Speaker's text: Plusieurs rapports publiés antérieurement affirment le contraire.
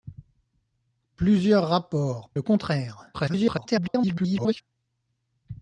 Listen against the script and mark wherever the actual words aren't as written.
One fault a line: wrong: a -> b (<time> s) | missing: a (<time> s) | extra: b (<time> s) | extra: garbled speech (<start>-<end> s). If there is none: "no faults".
missing: publiés antérieurement affirment (2.3 s)
extra: garbled speech (3.1-4.6 s)